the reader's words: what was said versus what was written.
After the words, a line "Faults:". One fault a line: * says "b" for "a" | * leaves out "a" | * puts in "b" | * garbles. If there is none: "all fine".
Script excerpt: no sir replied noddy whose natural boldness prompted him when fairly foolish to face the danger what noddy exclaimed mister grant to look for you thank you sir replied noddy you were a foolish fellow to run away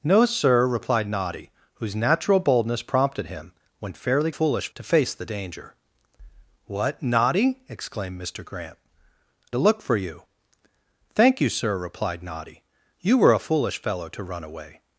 no sir replied noddy whose natural boldness prompted him when fairly foolish to face the danger what noddy exclaimed mister grant to look for you thank you sir replied noddy you were a foolish fellow to run away
Faults:
all fine